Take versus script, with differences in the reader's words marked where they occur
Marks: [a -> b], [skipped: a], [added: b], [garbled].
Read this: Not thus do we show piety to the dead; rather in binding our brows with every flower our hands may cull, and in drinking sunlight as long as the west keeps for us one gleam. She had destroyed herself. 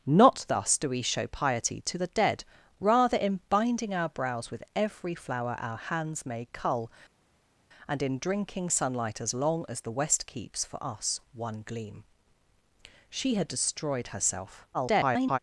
Not thus do we show piety to the dead; rather in binding our brows with every flower our hands may cull, and in drinking sunlight as long as the west keeps for us one gleam. She had destroyed herself. [garbled]